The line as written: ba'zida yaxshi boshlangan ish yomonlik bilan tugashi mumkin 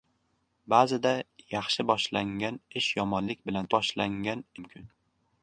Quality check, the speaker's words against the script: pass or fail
fail